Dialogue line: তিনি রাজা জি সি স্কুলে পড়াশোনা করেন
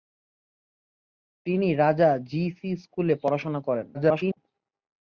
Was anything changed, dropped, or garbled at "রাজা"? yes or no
no